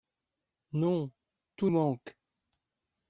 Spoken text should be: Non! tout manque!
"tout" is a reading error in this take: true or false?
false